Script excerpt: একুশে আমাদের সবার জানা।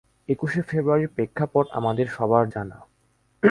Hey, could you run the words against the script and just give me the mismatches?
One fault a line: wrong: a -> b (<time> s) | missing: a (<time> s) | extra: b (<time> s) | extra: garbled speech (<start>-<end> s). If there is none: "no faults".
extra: ফেব্রুয়ারির প্রেক্ষাপট (0.6 s)